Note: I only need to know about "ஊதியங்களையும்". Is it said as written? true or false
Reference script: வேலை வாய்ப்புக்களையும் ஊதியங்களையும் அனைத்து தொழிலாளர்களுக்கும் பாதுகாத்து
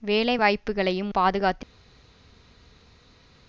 false